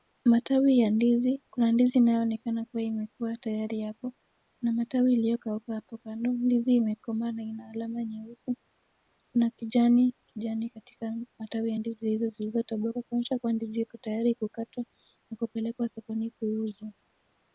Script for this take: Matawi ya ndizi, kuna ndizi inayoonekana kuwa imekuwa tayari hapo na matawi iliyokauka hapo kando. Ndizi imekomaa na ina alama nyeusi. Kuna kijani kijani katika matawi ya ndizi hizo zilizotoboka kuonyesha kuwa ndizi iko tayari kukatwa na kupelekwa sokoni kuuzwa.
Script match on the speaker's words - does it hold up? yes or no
yes